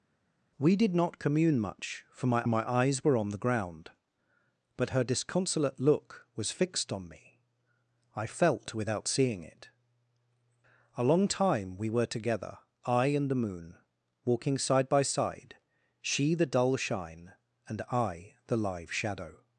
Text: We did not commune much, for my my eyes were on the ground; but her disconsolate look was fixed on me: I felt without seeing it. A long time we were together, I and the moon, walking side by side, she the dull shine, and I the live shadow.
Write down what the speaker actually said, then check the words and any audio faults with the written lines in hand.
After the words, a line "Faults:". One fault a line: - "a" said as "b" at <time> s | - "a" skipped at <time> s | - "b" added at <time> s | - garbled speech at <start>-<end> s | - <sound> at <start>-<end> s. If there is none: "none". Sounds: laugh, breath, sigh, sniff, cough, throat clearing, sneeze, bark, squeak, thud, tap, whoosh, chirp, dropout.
We did not commune much, for my my eyes were on the ground; but her disconsolate look was fixed on me: I felt without seeing it. A long time we were together, I and the moon, walking side by side, she the dull shine, and I the live shadow.
Faults:
none